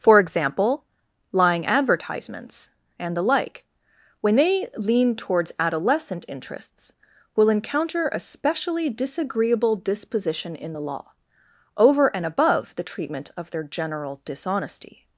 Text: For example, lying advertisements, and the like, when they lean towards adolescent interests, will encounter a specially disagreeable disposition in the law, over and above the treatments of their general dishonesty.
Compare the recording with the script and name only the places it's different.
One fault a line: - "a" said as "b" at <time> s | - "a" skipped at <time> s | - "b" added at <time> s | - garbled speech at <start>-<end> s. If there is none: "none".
- "treatments" said as "treatment" at 12.8 s